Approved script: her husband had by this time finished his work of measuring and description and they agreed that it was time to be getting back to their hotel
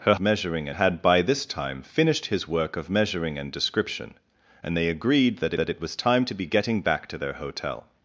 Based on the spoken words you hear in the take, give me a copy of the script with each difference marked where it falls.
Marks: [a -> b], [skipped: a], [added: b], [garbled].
her [husband -> measuring] had by this time finished his work of measuring and description and they agreed that [added: that] it was time to be getting back to their hotel